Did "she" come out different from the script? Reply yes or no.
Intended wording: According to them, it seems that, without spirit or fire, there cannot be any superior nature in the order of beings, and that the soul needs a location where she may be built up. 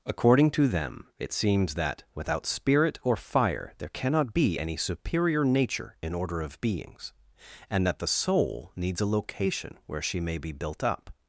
no